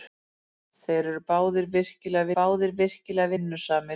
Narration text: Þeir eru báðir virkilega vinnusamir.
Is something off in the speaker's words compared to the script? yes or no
yes